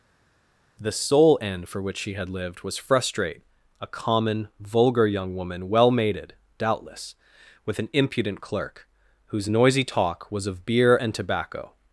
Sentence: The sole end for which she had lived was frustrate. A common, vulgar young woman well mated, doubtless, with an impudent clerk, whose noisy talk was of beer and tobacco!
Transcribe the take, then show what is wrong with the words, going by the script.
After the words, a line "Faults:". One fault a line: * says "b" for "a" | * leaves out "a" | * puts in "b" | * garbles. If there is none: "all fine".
The sole end for which she had lived was frustrate. A common, vulgar young woman well mated, doubtless, with an impudent clerk, whose noisy talk was of beer and tobacco!
Faults:
all fine